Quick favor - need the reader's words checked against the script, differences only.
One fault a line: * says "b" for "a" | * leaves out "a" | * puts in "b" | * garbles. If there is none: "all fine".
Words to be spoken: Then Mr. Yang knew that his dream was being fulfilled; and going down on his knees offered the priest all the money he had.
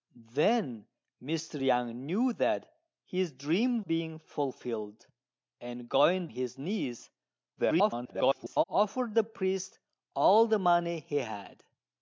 * leaves out "was"
* leaves out "down on"
* garbles